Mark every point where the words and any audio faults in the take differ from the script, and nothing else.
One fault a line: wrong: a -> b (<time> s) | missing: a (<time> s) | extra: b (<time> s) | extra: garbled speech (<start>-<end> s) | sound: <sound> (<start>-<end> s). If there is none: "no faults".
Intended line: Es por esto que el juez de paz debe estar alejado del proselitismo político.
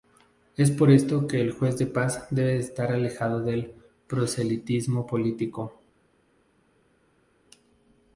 no faults